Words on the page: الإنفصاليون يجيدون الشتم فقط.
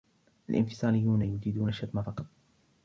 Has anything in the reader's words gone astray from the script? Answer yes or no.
no